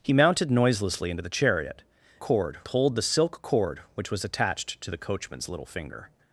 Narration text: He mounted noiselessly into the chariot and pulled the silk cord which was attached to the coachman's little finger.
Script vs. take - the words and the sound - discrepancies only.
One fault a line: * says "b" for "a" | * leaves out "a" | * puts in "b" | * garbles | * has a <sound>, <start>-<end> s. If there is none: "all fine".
* says "cord" for "and"